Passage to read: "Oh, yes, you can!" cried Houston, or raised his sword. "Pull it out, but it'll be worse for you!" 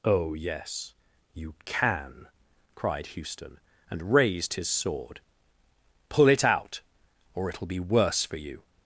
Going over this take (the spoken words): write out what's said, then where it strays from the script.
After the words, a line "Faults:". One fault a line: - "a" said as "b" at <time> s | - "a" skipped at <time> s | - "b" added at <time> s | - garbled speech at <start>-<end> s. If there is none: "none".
"Oh, yes, you can!" cried Houston, and raised his sword. "Pull it out, or it'll be worse for you!"
Faults:
- "or" said as "and" at 3.9 s
- "but" said as "or" at 7.3 s